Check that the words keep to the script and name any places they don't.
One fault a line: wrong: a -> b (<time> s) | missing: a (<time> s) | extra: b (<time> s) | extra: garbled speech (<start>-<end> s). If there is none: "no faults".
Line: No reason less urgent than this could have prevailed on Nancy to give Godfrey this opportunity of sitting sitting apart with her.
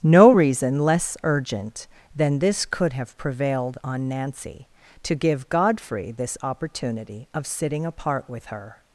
missing: sitting (7.9 s)